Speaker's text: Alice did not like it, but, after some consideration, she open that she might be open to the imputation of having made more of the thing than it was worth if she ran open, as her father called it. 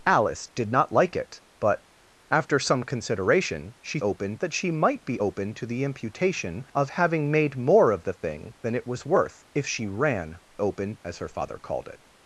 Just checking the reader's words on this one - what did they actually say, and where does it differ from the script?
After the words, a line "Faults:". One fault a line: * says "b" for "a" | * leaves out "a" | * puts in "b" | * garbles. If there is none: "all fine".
Alice did not like it, but, after some consideration, she open that she might be open to the imputation of having made more of the thing than it was worth if she ran open, as her father called it.
Faults:
all fine